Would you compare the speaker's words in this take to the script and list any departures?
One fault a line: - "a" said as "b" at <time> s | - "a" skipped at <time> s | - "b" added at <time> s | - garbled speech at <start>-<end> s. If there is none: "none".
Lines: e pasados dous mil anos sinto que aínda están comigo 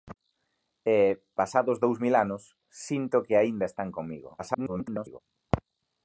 - garbled speech at 4.4-5.2 s